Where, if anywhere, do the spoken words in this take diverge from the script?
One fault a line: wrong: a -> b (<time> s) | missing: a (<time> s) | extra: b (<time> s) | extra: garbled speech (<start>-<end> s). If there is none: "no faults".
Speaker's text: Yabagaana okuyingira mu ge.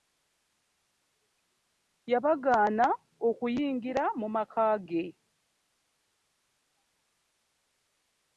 extra: maka (4.3 s)